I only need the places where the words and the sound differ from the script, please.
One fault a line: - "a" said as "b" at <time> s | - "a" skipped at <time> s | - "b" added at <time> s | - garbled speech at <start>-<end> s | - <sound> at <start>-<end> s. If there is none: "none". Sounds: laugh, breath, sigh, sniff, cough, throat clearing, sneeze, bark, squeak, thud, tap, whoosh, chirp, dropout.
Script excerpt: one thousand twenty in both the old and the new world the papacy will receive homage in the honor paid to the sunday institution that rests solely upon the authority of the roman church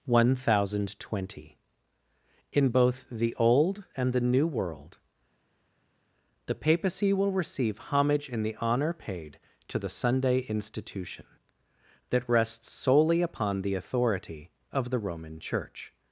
none